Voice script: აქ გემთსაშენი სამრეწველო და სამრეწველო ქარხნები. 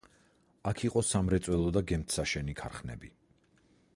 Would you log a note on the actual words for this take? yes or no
yes